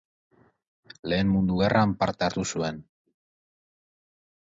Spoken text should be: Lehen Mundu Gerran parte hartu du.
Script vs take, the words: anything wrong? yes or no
yes